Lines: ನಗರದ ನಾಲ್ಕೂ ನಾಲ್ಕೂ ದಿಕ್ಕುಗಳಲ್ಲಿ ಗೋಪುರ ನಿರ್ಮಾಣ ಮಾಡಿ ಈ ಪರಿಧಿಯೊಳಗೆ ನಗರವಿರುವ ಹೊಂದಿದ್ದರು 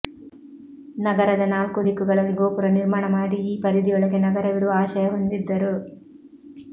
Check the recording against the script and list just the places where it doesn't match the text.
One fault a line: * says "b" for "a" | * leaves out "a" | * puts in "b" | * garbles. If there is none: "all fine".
* leaves out "ನಾಲ್ಕೂ"
* puts in "ಆಶಯ"